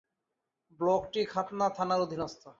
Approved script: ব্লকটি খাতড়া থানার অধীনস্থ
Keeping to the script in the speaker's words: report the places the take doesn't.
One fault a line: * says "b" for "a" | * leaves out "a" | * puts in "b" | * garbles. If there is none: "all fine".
all fine